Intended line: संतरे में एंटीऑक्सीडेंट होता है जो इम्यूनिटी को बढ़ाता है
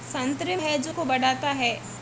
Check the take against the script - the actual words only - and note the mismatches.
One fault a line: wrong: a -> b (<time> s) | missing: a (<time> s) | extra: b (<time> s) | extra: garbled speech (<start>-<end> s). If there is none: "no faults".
missing: में एंटीऑक्सीडेंट होता (0.6 s)
missing: इम्यूनिटी (0.9 s)